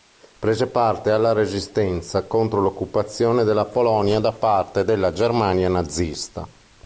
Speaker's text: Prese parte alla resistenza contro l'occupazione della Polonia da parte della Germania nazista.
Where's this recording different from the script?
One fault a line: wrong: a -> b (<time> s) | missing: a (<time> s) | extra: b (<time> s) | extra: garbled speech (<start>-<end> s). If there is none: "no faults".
no faults